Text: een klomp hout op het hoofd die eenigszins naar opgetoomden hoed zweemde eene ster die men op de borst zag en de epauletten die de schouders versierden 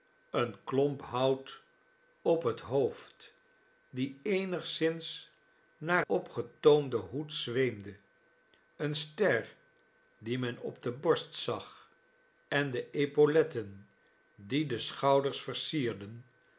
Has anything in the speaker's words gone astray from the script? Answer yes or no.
no